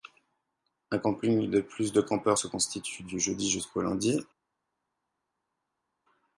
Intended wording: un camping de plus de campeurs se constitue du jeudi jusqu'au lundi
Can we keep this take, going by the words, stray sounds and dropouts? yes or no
yes